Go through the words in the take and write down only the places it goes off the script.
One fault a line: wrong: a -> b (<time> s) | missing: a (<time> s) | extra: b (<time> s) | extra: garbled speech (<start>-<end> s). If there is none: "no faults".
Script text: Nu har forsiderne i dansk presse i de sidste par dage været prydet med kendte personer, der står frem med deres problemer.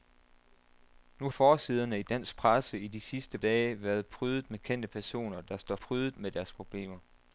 missing: har (1.3 s)
missing: par (3.4 s)
wrong: frem -> prydet (5.7 s)